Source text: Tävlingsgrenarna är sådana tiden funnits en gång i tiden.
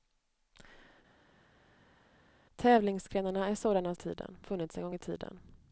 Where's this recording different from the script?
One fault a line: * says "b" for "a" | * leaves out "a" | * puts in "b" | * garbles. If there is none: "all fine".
all fine